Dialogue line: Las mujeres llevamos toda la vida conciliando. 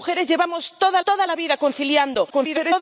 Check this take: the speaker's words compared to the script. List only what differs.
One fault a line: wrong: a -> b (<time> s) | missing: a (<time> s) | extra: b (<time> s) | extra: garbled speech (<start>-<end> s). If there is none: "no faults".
extra: toda (1.0 s)
extra: garbled speech (2.3-2.8 s)